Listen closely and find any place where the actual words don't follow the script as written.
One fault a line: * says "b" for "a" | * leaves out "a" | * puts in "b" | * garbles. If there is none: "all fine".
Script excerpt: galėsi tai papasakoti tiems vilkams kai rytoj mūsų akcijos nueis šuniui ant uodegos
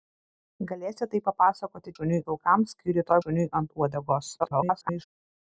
* says "šuniui" for "tiems"
* leaves out "mūsų akcijos nueis"
* garbles